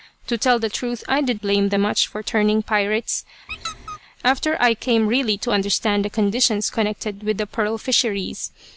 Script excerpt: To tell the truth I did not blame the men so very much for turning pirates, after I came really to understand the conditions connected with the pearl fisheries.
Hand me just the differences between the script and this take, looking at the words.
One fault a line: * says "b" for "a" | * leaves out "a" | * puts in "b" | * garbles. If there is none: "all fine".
* leaves out "not"
* leaves out "men so very"